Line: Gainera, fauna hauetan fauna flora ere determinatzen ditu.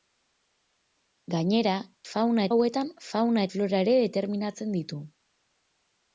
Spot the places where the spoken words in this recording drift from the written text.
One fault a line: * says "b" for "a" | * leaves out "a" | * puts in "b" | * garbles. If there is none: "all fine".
all fine